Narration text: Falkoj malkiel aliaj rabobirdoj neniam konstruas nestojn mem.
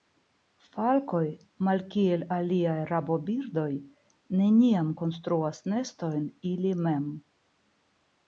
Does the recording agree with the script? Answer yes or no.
no